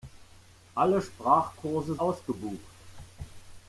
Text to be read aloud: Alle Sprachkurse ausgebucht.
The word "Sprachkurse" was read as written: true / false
true